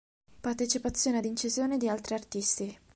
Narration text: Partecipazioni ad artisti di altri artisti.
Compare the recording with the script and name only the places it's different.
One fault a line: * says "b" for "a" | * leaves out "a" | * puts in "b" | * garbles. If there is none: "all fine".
* says "incisioni" for "artisti"